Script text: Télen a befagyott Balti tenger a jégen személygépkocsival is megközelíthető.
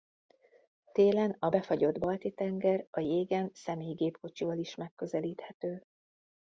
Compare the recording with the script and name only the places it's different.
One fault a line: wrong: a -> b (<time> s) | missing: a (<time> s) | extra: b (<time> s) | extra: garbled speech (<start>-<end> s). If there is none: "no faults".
no faults